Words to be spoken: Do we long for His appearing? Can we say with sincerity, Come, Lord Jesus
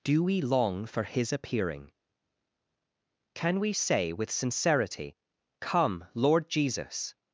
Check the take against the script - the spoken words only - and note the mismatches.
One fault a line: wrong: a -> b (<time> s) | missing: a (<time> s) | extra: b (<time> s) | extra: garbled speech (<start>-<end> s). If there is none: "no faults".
no faults